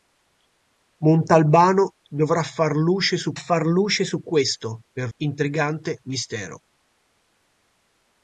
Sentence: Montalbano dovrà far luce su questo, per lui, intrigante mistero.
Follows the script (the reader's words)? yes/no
no